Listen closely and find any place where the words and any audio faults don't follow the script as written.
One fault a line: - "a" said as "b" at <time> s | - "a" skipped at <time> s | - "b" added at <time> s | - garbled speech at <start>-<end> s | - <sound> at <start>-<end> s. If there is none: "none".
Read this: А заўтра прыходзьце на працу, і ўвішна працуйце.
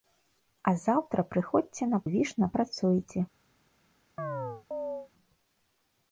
- "працу і" skipped at 2.0 s
- chirp at 4.2-5.1 s